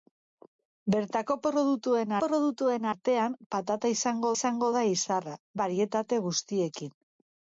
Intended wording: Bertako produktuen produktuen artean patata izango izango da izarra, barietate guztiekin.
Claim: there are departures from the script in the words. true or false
false